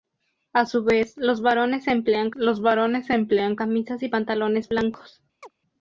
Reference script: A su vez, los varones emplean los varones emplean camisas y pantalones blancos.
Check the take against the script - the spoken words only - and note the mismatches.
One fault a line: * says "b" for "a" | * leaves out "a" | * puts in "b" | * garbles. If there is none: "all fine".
all fine